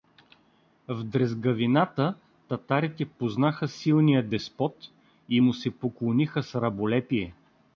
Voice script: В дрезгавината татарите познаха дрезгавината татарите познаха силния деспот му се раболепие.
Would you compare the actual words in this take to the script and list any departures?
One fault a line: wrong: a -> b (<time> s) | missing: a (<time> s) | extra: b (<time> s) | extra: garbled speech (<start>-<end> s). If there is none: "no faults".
missing: дрезгавината татарите познаха (3.7 s)
extra: и (5.3 s)
extra: поклониха с (5.7 s)